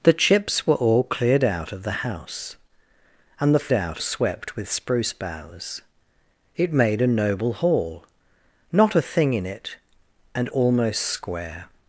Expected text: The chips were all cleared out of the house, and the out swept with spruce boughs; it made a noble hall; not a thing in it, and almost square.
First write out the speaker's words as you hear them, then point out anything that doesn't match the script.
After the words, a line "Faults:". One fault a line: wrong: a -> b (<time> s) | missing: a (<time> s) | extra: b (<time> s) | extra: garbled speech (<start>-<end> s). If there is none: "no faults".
The chips were all cleared out of the house, and the out swept with spruce boughs; it made a noble hall; not a thing in it, and almost square.
Faults:
no faults